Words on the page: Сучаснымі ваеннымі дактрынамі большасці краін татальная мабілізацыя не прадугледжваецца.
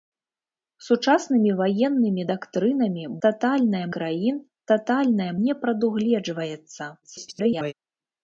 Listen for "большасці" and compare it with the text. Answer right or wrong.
wrong